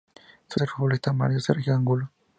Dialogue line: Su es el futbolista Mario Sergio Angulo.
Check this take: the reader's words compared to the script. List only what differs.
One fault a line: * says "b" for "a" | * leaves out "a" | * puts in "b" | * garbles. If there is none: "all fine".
all fine